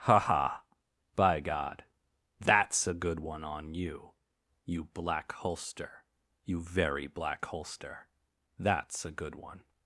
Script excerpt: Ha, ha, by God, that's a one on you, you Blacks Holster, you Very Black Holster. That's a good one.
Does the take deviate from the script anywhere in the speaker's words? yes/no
yes